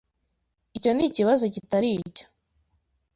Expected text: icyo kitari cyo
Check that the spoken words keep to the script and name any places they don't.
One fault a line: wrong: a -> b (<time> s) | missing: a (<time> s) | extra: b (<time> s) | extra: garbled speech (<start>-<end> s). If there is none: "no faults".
extra: nikibazo (0.9 s)